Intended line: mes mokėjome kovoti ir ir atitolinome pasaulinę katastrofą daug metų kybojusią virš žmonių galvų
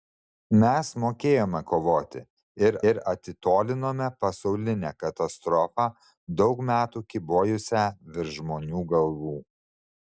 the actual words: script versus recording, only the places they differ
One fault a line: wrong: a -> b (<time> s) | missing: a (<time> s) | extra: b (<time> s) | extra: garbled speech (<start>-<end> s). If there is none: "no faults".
no faults